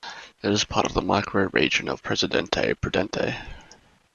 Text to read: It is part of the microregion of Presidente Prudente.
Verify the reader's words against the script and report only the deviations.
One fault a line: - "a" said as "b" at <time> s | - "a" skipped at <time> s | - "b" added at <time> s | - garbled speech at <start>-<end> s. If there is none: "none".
none